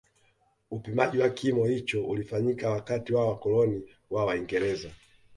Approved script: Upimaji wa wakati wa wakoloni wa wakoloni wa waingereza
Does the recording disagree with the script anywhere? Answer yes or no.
yes